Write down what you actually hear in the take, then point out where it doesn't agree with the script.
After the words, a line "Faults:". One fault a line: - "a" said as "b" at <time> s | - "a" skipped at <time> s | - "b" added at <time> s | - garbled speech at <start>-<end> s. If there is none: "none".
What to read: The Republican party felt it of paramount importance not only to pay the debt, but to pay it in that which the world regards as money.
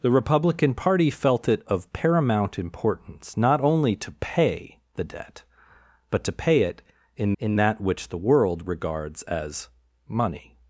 The Republican party felt it of paramount importance not only to pay the debt, but to pay it in in that which the world regards as money.
Faults:
- "in" added at 7.4 s